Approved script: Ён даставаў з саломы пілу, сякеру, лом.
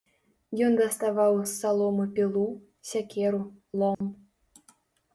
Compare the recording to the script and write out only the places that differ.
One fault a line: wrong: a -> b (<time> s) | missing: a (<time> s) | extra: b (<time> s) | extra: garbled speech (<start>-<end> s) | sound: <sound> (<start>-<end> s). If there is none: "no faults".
sound: dropout (3.9-4.0 s)